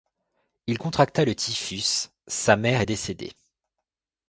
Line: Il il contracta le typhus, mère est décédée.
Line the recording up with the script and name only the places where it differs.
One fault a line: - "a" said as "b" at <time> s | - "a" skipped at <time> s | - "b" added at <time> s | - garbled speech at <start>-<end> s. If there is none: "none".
- "il" skipped at 0.8 s
- "sa" added at 2.3 s